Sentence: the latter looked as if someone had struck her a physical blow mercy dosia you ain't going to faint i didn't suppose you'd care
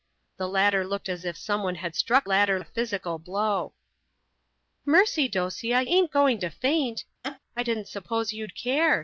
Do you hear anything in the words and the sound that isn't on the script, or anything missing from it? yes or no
yes